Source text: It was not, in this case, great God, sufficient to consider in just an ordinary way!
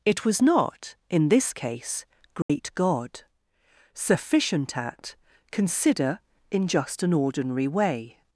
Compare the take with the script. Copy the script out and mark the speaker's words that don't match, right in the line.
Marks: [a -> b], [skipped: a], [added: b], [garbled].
It was not, in this case, great God, sufficient [to -> at] consider in just an ordinary way!